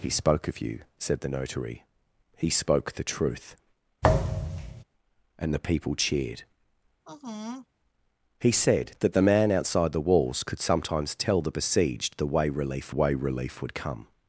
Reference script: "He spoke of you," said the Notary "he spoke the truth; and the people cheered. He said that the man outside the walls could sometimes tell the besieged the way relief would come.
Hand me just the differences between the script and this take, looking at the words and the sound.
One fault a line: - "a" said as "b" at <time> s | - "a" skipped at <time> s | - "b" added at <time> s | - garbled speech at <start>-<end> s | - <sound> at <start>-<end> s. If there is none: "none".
- thud at 4.0-4.8 s
- sigh at 7.0-7.7 s
- "way relief" added at 12.9 s